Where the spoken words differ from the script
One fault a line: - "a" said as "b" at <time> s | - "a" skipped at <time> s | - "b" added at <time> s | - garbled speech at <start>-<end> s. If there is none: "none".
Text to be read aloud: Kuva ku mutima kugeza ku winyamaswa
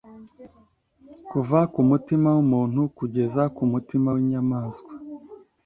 - "wumuntu" added at 2.4 s
- "mutima" added at 3.7 s